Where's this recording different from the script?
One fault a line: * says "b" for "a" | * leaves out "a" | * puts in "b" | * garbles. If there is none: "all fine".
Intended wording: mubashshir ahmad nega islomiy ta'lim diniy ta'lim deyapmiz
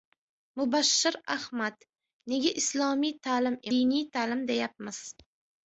all fine